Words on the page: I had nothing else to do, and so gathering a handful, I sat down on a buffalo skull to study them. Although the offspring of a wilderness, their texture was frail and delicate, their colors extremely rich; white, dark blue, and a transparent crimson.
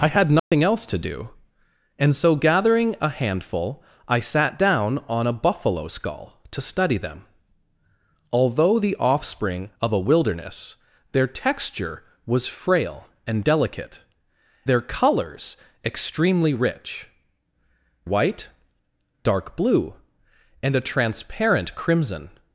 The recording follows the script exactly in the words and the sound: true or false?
false